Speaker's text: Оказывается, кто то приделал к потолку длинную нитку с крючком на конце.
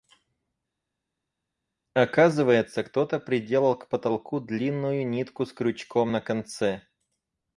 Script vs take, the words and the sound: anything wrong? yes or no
no